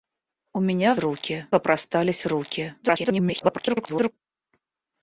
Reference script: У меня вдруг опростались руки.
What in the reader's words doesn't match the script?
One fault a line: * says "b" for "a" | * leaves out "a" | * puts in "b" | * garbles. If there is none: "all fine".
* says "руки" for "вдруг"
* garbles